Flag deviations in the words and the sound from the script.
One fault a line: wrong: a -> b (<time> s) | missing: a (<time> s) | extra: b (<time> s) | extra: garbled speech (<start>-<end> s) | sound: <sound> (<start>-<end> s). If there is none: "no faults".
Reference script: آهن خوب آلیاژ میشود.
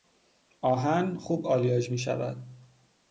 no faults